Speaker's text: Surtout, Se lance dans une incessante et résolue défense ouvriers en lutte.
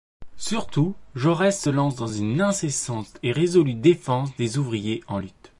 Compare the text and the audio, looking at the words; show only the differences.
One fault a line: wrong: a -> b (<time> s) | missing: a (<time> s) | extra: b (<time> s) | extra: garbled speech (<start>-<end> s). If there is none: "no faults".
extra: Jaurès (1.1 s)
extra: des (4.4 s)